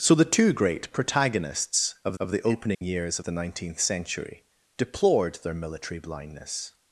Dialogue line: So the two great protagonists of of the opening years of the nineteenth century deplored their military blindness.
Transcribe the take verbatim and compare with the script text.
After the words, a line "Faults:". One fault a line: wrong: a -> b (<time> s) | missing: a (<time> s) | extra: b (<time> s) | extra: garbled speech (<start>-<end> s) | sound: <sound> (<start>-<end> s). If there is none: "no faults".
So the two great protagonists of of the opening years of the nineteenth century deplored their military blindness.
Faults:
sound: dropout (2.7-2.8 s)